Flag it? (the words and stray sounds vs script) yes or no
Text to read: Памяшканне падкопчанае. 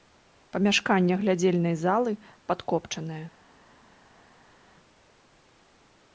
yes